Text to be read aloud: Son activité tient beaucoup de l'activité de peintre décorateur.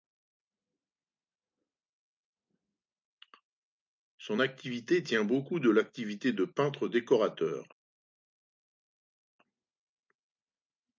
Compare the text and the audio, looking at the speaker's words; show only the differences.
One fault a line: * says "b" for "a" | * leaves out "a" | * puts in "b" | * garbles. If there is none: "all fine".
all fine